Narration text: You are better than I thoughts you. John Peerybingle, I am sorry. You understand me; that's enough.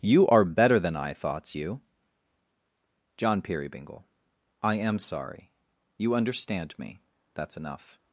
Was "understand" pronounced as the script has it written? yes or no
yes